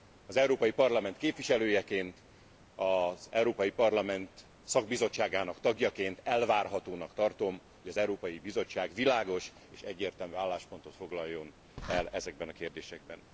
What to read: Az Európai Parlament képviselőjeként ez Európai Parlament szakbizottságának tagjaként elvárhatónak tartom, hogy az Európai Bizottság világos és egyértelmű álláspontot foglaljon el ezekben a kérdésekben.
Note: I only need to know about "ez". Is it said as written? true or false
false